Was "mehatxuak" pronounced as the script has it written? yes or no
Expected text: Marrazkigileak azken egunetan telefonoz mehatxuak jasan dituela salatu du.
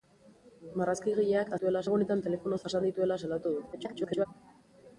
no